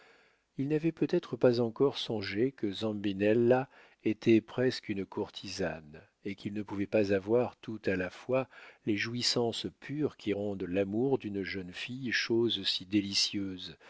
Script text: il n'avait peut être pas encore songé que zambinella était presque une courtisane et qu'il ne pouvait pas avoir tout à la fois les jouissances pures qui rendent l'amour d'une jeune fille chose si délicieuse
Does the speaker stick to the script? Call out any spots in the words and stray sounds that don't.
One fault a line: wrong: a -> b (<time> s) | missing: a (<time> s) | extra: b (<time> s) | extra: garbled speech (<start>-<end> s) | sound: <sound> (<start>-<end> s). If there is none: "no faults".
no faults